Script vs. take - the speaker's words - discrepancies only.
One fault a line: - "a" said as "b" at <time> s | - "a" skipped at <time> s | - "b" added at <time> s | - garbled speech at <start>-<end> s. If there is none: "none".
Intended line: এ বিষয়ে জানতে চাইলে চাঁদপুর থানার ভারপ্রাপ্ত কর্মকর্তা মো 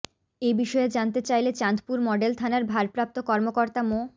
- "মডেল" added at 2.1 s